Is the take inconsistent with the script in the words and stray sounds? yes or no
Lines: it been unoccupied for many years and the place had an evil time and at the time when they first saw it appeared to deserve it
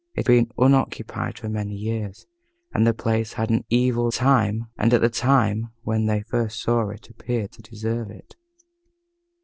no